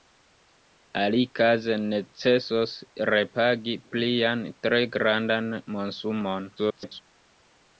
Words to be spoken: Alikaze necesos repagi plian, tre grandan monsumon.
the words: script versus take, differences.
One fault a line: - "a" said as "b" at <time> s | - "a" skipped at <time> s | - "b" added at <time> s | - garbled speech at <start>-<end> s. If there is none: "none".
- garbled speech at 6.6-7.0 s